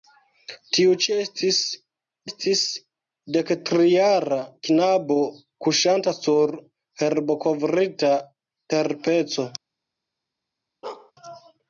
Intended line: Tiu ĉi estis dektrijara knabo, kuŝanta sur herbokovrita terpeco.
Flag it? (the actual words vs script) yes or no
yes